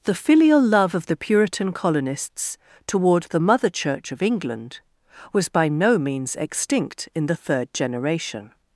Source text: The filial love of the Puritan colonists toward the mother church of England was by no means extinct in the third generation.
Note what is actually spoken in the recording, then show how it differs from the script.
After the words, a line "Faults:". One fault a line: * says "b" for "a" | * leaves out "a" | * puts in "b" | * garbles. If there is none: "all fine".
The filial love of the Puritan colonists toward the mother church of England was by no means extinct in the third generation.
Faults:
all fine